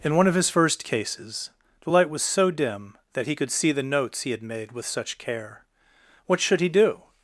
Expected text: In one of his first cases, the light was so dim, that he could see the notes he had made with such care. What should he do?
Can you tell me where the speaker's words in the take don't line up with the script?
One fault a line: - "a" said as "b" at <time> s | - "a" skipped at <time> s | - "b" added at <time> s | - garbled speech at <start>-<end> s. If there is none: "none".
none